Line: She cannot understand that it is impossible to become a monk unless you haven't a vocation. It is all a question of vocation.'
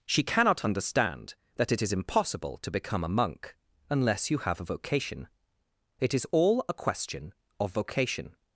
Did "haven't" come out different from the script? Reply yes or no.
yes